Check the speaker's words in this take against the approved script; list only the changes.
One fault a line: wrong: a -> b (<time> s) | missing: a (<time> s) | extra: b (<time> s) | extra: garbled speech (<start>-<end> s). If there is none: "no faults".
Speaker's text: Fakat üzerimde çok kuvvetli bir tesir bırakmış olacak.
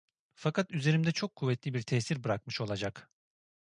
no faults